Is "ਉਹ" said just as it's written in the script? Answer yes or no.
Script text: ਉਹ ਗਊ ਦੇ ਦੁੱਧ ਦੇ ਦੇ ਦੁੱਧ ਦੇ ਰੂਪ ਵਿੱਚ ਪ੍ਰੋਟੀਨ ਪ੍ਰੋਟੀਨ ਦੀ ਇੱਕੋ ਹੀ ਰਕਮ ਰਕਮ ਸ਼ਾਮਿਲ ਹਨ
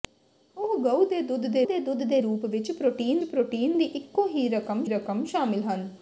yes